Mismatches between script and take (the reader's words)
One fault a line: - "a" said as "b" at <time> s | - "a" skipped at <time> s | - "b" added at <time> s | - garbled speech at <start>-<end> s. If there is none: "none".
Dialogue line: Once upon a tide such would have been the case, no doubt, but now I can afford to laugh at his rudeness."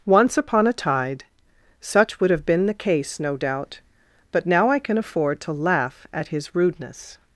none